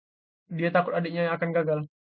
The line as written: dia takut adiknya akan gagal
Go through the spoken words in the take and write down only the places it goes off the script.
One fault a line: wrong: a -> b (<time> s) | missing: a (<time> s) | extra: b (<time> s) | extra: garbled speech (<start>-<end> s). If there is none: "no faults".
no faults